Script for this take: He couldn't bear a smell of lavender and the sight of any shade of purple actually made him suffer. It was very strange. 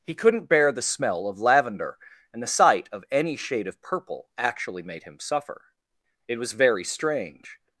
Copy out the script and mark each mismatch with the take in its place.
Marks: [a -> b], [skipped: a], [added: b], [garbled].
He couldn't bear [a -> the] smell of lavender and the sight of any shade of purple actually made him suffer. It was very strange.